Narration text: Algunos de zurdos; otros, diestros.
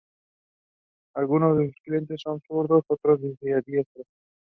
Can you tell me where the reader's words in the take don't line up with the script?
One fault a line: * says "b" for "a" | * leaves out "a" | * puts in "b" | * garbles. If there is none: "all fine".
* puts in "sus clientes son"